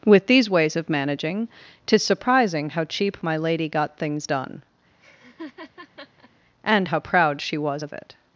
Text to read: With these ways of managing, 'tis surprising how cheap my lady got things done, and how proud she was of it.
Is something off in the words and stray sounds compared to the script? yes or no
yes